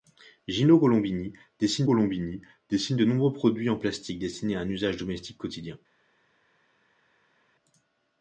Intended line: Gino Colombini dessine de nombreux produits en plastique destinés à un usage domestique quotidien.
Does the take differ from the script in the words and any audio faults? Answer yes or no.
yes